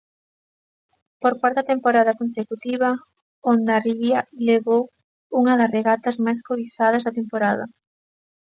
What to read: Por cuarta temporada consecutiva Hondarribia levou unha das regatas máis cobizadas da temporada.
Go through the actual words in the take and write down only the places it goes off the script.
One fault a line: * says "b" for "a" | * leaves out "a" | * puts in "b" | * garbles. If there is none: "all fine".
all fine